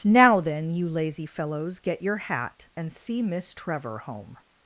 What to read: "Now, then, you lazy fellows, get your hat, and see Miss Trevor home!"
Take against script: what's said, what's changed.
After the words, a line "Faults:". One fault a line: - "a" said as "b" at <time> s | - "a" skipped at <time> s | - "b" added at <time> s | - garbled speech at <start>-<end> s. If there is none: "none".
"Now, then, you lazy fellows, get your hat, and see Miss Trevor home!"
Faults:
none